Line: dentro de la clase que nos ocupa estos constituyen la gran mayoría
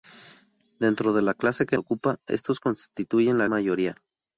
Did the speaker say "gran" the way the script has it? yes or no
no